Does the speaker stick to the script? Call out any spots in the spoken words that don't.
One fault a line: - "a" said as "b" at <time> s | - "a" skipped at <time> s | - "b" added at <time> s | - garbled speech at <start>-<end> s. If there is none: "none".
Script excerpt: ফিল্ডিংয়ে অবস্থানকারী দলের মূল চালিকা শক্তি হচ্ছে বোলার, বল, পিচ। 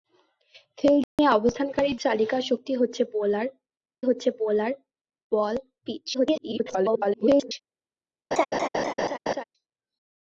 - "দলের মূল চালিকা শক্তি" said as "চালিকা শক্তি হচ্ছে বোলার" at 2.0 s
- garbled speech at 6.1-7.5 s